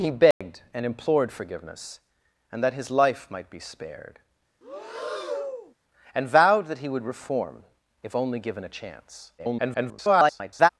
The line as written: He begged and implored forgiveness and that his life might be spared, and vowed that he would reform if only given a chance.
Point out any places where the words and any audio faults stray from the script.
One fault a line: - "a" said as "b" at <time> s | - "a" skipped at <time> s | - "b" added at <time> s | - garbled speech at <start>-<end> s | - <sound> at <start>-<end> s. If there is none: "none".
- dropout at 0.3-0.4 s
- breath at 4.6-5.7 s
- garbled speech at 9.4-10.7 s